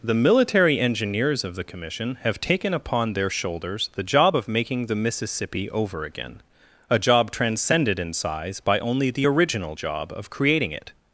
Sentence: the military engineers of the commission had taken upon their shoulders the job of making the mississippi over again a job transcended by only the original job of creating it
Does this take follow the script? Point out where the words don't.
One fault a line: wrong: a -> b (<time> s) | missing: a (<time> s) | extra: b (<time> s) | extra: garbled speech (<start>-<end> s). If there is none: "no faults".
wrong: had -> have (2.2 s)
extra: in size (8.0 s)